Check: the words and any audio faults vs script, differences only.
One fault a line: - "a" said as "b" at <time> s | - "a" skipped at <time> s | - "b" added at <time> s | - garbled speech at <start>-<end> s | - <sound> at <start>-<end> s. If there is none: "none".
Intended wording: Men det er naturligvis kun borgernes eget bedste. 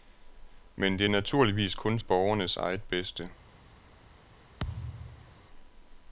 - thud at 4.6-5.4 s